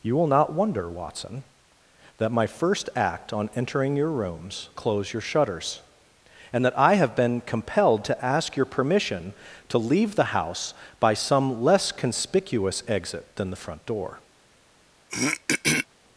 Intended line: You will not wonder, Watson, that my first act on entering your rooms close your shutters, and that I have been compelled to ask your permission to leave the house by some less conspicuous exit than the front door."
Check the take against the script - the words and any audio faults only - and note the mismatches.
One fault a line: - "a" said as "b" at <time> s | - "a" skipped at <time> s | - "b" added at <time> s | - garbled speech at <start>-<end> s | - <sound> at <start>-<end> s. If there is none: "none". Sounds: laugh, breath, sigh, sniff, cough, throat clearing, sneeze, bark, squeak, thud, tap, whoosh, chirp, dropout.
- throat clearing at 15.1-15.9 s